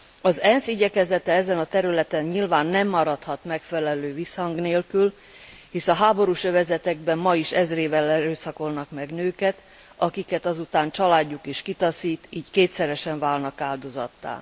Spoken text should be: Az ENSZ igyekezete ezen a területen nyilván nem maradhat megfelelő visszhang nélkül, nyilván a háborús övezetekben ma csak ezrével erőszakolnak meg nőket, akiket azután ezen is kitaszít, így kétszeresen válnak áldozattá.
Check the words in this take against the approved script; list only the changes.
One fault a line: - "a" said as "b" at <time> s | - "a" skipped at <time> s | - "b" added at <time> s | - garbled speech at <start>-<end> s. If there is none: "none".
- "nyilván" said as "hisz" at 5.7 s
- "csak" said as "is" at 7.4 s
- "ezen" said as "családjuk" at 10.9 s